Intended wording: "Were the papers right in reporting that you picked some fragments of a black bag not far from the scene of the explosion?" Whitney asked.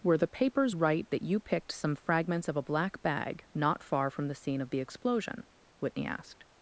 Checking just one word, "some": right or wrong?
right